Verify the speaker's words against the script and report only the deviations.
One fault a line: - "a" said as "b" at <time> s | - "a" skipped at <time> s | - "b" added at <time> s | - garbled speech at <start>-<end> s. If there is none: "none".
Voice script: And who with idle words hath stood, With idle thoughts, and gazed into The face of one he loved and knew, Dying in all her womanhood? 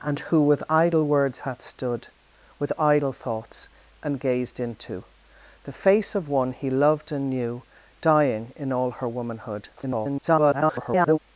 - garbled speech at 9.8-11.2 s